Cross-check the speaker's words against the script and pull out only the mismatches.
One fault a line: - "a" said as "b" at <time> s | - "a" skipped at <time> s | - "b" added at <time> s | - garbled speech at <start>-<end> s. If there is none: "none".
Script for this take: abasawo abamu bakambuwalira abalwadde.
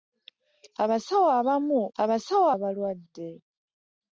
- "bakambuwalira" said as "abasawo" at 2.0 s